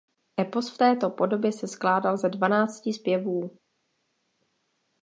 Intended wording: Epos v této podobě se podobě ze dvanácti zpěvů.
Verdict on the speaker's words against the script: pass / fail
fail